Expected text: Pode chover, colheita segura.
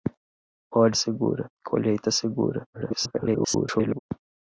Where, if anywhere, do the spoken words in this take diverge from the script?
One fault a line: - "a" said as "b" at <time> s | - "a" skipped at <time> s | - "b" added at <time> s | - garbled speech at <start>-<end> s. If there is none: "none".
- "chover" said as "segura" at 0.9 s
- garbled speech at 2.7-4.0 s